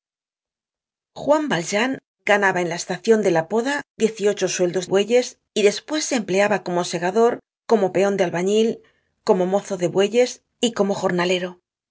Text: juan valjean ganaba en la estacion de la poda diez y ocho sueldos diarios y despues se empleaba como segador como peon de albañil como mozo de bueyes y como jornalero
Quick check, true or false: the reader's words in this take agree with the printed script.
false